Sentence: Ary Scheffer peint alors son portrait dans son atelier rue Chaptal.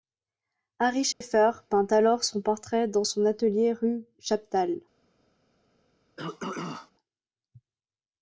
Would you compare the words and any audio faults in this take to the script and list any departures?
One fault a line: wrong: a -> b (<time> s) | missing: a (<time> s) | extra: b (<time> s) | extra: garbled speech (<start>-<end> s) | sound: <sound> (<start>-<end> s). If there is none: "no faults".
sound: dropout (1.1-1.2 s)
sound: throat clearing (6.2-6.9 s)